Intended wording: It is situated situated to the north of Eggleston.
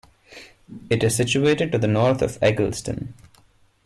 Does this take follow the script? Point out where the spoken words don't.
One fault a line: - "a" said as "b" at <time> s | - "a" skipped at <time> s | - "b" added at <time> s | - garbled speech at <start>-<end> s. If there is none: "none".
- "situated" skipped at 1.7 s